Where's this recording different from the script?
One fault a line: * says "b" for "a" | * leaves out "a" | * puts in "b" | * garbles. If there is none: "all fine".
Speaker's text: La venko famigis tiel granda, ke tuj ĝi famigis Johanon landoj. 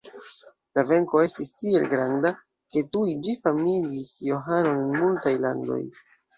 * says "estis" for "famigis"
* puts in "en multaj"